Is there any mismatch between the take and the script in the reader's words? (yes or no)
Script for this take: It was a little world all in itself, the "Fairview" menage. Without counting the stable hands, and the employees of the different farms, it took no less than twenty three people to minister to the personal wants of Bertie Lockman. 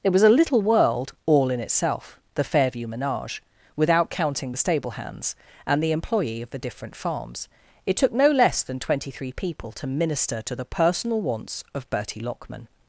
yes